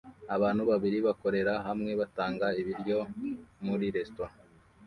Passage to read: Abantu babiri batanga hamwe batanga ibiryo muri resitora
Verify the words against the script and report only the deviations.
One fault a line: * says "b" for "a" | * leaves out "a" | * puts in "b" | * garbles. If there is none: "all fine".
* says "bakorera" for "batanga"